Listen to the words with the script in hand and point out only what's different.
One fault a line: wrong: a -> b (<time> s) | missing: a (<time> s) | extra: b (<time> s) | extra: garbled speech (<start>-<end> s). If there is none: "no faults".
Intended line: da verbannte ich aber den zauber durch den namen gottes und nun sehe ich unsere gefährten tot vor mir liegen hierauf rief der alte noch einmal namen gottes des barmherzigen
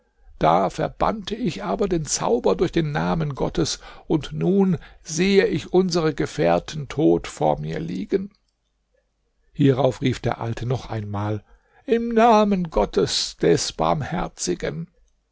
extra: im (11.8 s)